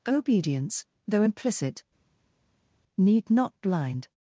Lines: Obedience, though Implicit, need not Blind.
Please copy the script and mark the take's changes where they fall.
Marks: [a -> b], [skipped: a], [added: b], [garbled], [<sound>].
Obedience, though Implicit, need not Blind.